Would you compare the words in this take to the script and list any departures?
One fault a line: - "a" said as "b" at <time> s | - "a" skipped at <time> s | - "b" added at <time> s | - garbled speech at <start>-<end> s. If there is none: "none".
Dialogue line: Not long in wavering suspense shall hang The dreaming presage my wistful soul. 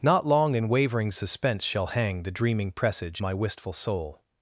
none